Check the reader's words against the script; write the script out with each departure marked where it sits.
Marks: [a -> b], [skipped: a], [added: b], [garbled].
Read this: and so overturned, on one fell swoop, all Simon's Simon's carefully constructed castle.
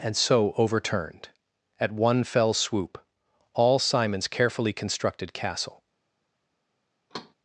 and so overturned, [on -> at] one fell swoop, all Simon's [skipped: Simon's] carefully constructed castle.